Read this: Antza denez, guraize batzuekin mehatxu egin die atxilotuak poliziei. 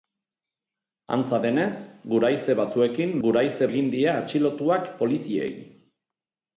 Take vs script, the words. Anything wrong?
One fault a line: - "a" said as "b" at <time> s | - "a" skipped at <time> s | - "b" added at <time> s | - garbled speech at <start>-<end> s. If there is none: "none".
- "mehatxu" said as "guraize" at 3.3 s